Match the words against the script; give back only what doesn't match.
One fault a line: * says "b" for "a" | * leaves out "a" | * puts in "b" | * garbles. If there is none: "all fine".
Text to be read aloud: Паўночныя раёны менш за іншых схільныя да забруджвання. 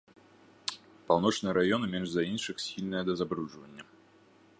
all fine